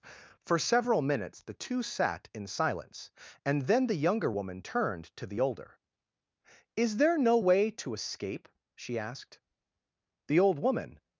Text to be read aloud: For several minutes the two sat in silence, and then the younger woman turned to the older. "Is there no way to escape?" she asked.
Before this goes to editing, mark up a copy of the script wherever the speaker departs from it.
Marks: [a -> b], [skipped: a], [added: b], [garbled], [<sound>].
For several minutes the two sat in silence, and then the younger woman turned to the older. "Is there no way to escape?" she asked. [added: The old woman]